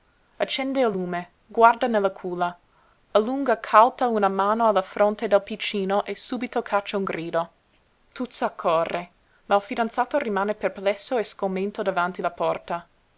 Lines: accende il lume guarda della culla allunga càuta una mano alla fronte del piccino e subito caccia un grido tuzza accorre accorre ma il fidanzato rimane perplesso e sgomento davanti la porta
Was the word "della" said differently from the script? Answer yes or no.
yes